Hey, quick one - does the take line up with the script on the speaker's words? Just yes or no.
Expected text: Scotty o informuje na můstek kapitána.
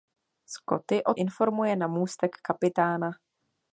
yes